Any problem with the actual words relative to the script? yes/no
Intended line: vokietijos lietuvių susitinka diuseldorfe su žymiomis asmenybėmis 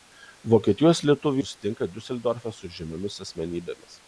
no